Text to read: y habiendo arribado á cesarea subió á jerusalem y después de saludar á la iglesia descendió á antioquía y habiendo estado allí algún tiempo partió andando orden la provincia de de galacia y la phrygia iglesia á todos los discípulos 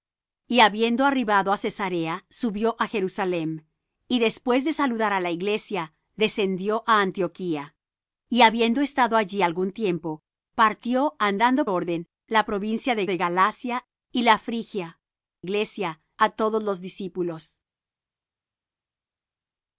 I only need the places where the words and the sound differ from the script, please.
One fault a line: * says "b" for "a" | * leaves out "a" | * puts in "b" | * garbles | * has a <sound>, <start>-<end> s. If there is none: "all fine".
all fine